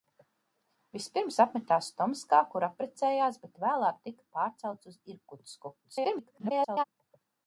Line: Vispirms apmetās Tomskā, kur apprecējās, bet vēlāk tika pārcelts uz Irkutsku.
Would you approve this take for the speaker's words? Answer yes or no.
no